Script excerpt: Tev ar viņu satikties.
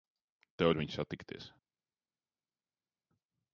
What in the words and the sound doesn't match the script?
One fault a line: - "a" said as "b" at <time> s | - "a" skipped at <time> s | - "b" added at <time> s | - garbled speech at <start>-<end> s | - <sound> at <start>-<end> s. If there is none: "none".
none